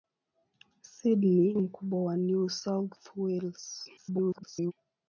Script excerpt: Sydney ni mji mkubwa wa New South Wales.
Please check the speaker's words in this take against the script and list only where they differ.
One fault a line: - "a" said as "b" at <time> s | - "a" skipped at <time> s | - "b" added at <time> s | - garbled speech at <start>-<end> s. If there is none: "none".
- "ni mji" skipped at 1.5 s
- garbled speech at 4.0-4.7 s